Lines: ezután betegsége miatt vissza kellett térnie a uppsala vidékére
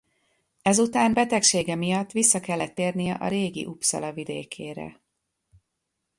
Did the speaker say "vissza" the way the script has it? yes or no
yes